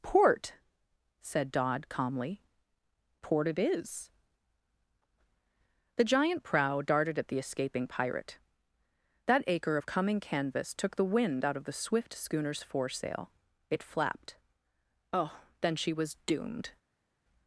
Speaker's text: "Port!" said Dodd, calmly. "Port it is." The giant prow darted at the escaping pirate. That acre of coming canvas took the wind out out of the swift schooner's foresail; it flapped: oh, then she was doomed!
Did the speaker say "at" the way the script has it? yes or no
yes